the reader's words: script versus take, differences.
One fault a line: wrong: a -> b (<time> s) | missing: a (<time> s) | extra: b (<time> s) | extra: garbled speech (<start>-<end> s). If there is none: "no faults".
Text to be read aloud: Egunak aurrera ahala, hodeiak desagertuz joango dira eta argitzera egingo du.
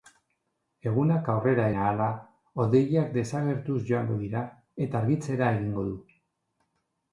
no faults